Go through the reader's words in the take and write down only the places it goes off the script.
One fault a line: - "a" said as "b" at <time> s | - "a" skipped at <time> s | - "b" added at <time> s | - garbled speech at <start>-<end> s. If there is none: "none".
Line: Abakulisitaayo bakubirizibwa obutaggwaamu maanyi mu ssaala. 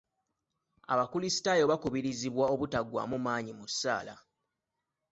none